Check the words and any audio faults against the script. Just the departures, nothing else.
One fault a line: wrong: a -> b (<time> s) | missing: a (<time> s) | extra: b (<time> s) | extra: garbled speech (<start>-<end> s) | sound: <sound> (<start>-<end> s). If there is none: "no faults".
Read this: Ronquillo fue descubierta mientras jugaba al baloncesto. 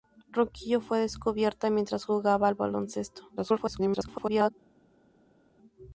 extra: garbled speech (3.4-4.5 s)